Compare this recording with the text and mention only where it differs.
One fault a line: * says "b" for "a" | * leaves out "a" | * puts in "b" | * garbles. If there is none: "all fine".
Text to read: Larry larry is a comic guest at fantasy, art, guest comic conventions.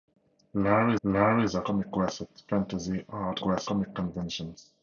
all fine